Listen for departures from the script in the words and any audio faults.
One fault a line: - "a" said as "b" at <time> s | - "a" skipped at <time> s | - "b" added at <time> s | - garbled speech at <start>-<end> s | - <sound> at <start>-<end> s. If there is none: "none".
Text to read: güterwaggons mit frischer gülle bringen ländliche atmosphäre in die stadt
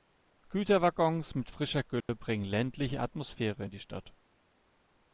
- dropout at 2.0-2.1 s